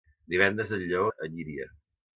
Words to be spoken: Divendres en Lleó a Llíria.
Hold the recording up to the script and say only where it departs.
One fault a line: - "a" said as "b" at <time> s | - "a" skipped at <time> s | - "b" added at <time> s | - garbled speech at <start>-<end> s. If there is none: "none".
none